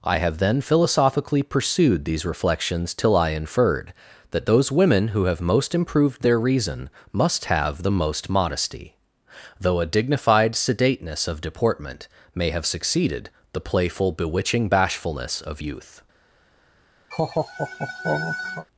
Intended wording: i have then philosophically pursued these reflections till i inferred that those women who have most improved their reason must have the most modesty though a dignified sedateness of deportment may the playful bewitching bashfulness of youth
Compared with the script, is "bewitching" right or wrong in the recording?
right